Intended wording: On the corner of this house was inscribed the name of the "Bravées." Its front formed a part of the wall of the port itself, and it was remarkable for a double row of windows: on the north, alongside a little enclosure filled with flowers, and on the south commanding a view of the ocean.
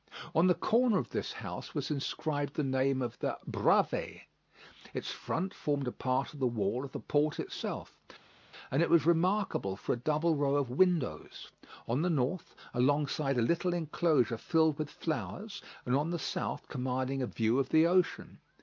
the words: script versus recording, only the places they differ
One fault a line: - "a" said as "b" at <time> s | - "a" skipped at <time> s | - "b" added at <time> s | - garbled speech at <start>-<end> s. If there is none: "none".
none